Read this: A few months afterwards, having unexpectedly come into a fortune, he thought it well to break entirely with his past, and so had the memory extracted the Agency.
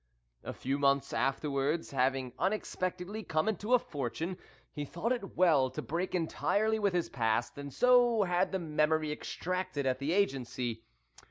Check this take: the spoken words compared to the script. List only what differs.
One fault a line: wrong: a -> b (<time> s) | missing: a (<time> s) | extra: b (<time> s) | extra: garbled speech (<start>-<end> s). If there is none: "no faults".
extra: at (9.9 s)